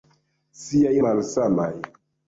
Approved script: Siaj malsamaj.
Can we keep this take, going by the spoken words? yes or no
yes